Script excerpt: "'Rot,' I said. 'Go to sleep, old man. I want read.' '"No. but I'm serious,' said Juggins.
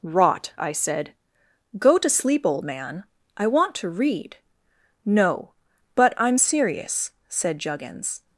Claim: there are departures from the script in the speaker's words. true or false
true